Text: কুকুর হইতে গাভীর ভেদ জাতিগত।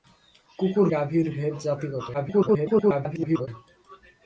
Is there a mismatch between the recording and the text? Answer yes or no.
yes